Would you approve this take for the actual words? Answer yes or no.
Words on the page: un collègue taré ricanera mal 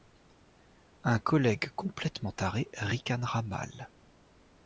no